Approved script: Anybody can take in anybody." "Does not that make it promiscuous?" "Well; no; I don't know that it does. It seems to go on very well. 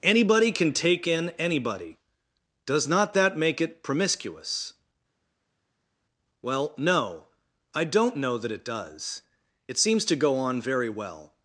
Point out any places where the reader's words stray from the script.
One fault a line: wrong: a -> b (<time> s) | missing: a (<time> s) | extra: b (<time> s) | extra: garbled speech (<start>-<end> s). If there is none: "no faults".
no faults